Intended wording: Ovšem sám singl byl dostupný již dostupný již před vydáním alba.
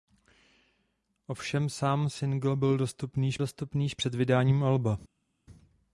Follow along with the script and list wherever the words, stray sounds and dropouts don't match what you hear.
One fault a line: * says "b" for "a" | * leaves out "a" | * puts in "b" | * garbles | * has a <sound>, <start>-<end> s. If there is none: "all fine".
all fine